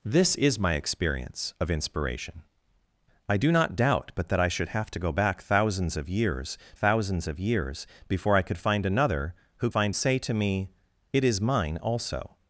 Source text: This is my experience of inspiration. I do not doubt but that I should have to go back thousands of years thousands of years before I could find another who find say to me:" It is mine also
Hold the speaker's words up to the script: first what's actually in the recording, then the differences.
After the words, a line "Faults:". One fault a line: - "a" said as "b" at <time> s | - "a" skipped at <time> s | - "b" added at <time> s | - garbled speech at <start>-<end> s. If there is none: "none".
This is my experience of inspiration. I do not doubt but that I should have to go back thousands of years thousands of years before I could find another who find say to me:" It is mine also
Faults:
none